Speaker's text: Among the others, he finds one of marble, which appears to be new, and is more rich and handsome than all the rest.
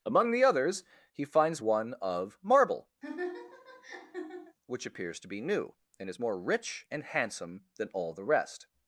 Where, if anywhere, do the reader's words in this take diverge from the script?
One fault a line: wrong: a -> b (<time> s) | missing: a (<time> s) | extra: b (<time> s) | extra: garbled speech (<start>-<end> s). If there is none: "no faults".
no faults